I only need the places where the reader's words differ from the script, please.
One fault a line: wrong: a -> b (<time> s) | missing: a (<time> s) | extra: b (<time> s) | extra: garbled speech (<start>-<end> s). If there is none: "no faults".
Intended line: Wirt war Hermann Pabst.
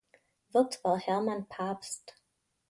no faults